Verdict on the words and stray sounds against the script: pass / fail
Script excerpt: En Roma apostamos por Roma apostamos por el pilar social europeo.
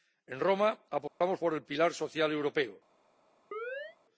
fail